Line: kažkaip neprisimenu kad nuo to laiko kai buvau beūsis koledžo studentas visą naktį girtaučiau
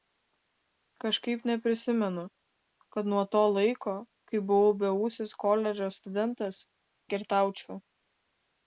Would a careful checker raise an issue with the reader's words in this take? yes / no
yes